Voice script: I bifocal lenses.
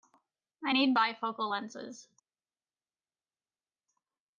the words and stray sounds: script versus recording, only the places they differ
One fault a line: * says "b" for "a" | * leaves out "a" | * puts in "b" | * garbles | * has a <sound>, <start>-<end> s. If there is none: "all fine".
* puts in "need"